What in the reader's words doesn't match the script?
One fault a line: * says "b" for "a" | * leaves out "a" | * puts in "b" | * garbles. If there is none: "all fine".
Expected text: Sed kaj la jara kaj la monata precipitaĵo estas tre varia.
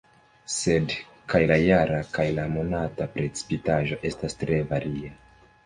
all fine